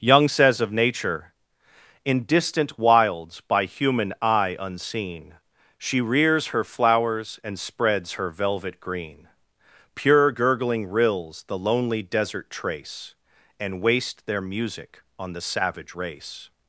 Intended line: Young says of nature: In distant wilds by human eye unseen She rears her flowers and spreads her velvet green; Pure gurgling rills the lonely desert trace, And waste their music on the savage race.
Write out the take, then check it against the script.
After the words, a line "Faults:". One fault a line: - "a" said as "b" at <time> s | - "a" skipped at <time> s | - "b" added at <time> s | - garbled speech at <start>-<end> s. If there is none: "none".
Young says of nature: In distant wilds by human eye unseen She rears her flowers and spreads her velvet green; Pure gurgling rills the lonely desert trace, And waste their music on the savage race.
Faults:
none